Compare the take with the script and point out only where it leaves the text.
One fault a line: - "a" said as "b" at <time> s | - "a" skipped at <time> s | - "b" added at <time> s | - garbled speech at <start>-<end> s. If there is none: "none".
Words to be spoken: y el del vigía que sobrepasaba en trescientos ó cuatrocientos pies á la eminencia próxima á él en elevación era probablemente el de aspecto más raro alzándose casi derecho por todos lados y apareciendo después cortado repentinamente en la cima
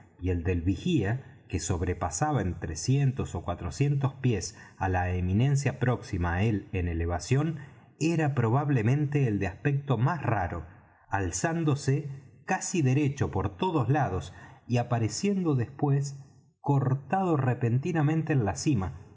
none